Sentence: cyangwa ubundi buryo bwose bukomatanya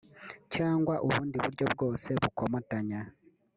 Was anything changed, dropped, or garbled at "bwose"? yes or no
no